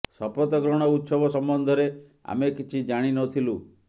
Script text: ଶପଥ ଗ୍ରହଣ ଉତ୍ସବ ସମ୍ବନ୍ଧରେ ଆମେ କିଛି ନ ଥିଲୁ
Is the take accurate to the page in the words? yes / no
no